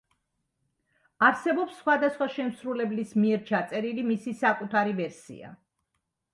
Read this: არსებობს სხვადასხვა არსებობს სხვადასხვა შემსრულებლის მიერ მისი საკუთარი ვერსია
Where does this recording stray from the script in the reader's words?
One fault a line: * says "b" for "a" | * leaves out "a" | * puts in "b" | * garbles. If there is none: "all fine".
* leaves out "არსებობს სხვადასხვა"
* puts in "ჩაწერილი"